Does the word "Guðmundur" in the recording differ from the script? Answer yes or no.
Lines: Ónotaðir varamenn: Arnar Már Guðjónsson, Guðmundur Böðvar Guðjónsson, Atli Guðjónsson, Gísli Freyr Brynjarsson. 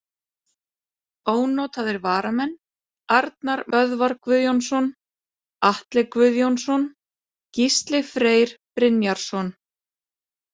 yes